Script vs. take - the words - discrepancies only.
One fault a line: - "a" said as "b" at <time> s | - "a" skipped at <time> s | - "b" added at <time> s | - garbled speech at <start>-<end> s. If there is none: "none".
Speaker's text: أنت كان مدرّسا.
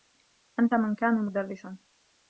- "من" added at 0.7 s